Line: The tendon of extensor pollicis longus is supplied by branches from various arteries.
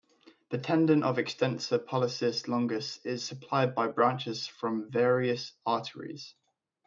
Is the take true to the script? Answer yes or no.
yes